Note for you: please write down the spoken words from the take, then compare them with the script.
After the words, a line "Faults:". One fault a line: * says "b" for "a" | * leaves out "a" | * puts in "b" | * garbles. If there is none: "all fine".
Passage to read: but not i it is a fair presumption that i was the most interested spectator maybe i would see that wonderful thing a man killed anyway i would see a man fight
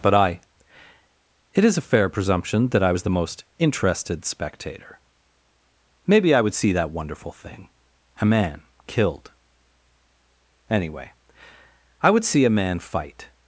but i it is a fair presumption that i was the most interested spectator maybe i would see that wonderful thing a man killed anyway i would see a man fight
Faults:
* leaves out "not"